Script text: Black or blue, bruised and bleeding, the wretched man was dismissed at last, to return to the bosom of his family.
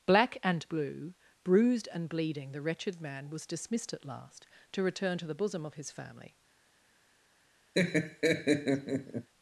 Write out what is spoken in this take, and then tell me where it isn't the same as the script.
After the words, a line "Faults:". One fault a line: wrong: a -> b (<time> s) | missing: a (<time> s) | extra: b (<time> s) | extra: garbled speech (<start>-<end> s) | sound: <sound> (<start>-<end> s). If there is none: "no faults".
Black and blue, bruised and bleeding, the wretched man was dismissed at last, to return to the bosom of his family.
Faults:
wrong: or -> and (0.4 s)
sound: laugh (7.7-9.3 s)